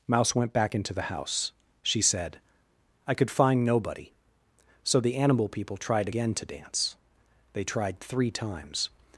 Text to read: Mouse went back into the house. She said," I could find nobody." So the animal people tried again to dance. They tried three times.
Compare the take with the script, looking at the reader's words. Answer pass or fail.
pass